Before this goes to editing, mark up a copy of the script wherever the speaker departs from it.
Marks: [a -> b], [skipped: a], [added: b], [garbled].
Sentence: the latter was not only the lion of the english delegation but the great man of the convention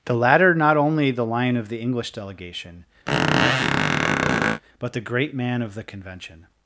the latter [skipped: was] not only the lion of the english delegation but the great man of the convention